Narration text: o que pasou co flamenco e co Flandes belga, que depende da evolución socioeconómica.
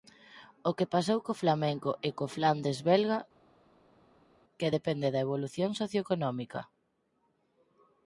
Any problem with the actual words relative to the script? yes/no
no